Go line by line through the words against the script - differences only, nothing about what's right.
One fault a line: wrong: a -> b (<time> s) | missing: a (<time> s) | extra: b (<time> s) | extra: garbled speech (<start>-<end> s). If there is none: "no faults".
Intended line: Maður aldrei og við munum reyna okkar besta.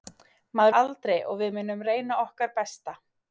no faults